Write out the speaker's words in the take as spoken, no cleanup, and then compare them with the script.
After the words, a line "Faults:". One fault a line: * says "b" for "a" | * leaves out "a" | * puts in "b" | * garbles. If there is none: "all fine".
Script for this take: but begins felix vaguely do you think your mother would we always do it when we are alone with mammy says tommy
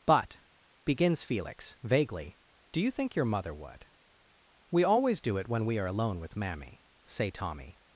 but begins felix vaguely do you think your mother would we always do it when we are alone with mammy say tommy
Faults:
* says "say" for "says"